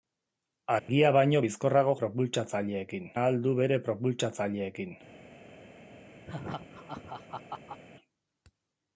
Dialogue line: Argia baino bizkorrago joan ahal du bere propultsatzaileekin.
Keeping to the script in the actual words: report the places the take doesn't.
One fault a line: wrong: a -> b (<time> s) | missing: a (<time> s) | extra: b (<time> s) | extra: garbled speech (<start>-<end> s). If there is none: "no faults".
wrong: joan -> propultsatzaileekin (2.0 s)